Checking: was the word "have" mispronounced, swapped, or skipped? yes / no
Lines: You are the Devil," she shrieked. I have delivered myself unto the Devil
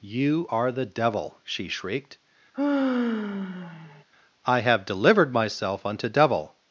no